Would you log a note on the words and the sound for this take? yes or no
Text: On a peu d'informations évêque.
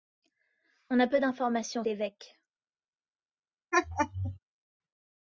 yes